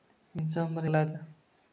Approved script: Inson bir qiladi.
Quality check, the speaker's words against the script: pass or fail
pass